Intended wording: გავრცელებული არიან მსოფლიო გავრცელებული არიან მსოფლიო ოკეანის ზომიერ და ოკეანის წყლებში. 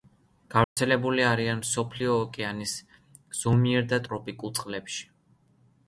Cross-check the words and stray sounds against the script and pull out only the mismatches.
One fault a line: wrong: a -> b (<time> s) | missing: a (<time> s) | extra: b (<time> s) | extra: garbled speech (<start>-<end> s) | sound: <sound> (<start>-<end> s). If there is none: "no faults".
sound: dropout (0.6-0.8 s)
missing: გავრცელებული არიან მსოფლიო (2.1 s)
wrong: ოკეანის -> ტროპიკულ (4.1 s)